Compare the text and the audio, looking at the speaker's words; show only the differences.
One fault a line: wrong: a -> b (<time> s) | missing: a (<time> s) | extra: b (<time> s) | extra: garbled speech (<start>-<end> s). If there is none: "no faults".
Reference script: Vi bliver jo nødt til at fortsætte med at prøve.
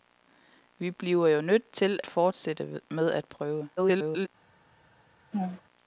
missing: at (2.0 s)
extra: garbled speech (3.8-4.3 s)